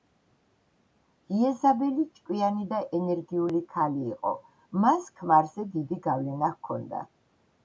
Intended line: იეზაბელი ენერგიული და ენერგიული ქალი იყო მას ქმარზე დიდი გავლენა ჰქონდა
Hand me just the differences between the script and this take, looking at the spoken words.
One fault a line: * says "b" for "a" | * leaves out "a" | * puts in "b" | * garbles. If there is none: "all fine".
* says "ჭკვიანი" for "ენერგიული"